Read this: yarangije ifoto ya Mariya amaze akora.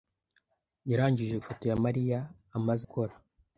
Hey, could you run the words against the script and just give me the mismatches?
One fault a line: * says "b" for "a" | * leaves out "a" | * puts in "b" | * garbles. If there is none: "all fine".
all fine